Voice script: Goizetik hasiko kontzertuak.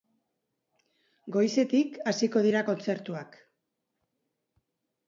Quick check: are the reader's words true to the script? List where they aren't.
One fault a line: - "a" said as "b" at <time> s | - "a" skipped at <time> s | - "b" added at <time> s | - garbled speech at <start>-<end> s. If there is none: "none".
- "dira" added at 2.5 s